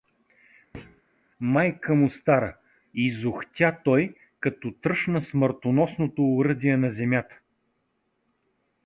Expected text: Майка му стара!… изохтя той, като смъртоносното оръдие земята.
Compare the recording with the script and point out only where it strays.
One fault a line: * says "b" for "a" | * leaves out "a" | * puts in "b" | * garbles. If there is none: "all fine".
* puts in "тръшна"
* puts in "на"